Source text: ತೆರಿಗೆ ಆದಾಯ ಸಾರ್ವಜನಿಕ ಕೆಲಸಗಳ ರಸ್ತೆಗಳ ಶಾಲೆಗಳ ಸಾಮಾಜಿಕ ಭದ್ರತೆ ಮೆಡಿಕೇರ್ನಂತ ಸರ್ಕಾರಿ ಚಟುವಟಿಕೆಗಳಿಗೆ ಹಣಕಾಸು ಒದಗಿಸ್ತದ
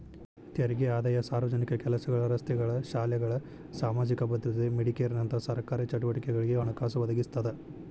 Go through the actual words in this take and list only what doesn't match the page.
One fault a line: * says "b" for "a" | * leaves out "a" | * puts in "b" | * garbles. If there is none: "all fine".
all fine